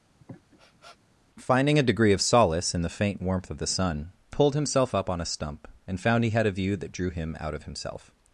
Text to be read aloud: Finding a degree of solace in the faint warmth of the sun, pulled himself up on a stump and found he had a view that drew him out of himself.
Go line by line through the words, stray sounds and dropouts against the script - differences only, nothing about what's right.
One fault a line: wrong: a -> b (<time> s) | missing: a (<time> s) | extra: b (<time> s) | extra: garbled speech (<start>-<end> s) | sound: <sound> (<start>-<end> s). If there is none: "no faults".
sound: sniff (0.2-1.0 s)